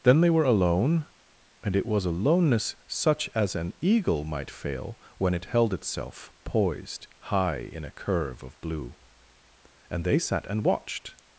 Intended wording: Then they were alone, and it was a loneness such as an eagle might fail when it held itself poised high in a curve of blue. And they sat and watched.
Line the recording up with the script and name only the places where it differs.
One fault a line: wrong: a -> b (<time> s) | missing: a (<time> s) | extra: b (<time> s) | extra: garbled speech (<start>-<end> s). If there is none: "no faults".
no faults